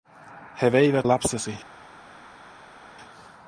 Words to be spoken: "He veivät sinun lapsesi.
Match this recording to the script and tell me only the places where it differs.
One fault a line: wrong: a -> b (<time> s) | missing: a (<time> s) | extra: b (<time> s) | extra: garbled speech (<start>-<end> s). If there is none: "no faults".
missing: sinun (1.1 s)